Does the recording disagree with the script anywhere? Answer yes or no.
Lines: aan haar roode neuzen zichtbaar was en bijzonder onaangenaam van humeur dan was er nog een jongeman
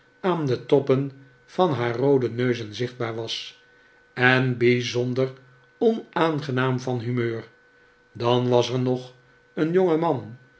yes